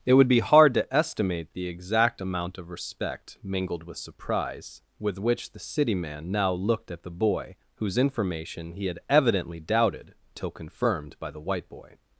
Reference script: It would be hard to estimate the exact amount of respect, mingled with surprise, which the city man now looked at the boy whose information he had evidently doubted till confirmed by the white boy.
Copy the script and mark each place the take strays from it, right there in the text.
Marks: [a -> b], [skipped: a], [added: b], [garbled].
It would be hard to estimate the exact amount of respect, mingled with surprise, [added: with] which the city man now looked at the boy whose information he had evidently doubted till confirmed by the white boy.